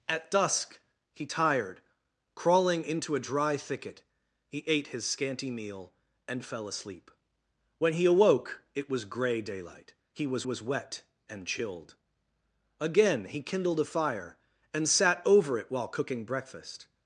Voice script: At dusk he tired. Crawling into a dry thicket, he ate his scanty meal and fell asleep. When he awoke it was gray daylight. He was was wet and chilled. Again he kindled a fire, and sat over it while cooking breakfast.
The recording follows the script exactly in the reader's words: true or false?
true